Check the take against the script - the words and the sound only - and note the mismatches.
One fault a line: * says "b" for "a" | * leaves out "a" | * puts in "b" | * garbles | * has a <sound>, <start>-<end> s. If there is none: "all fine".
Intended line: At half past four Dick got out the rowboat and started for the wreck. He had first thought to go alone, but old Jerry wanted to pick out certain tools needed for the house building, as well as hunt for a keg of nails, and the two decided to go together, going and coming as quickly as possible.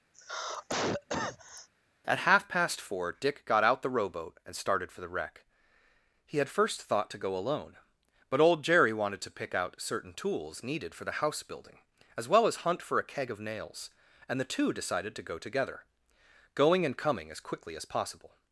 * has a cough, 0.1-1.7 s